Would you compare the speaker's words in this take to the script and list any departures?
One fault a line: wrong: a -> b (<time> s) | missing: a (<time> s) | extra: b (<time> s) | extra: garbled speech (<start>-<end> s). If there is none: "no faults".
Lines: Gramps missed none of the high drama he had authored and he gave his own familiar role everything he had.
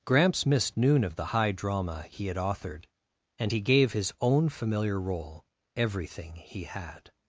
wrong: none -> noon (0.8 s)